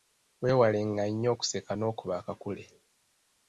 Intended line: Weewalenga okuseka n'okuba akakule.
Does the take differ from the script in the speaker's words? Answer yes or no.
yes